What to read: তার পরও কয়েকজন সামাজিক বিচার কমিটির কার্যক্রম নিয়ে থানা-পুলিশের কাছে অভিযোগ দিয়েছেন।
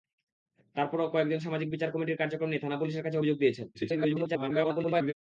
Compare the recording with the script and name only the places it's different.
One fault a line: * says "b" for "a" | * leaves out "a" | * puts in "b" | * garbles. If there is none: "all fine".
* garbles